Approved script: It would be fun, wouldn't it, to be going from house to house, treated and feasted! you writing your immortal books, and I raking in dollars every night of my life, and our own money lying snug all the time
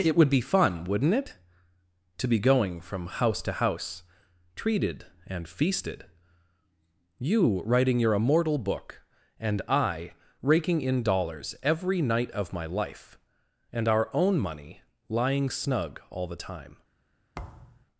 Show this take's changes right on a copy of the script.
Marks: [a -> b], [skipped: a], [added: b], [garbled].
It would be fun, wouldn't it, to be going from house to house, treated and feasted! you writing your immortal [books, -> book] and I raking in dollars every night of my life, and our own money lying snug all the time